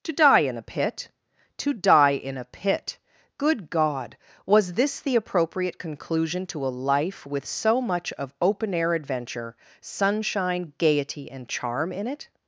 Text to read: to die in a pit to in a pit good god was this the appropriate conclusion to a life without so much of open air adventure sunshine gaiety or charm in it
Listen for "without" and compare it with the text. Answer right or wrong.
wrong